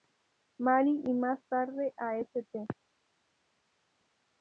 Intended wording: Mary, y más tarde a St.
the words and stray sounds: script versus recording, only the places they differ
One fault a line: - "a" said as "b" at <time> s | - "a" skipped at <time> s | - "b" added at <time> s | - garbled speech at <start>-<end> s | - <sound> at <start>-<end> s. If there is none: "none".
none